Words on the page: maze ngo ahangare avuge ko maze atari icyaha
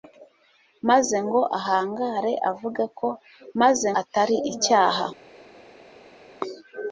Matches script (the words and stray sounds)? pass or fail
pass